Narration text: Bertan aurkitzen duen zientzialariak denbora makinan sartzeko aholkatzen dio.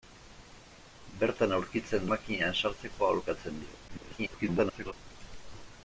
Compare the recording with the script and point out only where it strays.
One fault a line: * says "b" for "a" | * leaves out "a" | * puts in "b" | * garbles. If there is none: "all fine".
* leaves out "duen zientzialariak denbora"
* garbles